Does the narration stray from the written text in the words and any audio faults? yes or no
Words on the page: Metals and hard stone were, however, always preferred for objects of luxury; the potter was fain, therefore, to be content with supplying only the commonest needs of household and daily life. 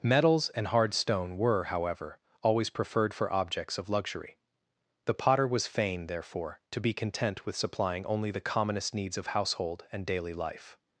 no